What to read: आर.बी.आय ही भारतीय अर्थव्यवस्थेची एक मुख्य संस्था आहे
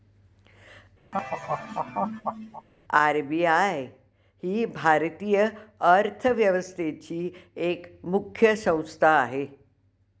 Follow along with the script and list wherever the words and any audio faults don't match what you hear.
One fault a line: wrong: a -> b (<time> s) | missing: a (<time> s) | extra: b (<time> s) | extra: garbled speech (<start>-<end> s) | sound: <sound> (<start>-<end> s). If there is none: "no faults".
sound: laugh (1.1-2.7 s)